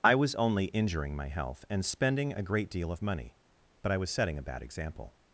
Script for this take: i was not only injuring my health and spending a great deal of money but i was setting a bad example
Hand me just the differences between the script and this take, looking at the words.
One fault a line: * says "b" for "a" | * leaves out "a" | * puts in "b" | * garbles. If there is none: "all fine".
* leaves out "not"